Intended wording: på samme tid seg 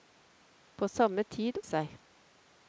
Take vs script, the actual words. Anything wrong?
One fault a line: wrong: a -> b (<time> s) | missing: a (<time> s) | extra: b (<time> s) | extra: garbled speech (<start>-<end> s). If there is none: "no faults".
no faults